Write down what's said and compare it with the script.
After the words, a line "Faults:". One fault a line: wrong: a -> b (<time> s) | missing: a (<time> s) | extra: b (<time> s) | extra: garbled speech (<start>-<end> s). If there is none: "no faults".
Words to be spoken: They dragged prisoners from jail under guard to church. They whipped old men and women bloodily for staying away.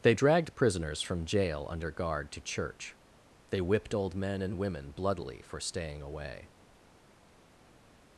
They dragged prisoners from jail under guard to church. They whipped old men and women bloodily for staying away.
Faults:
no faults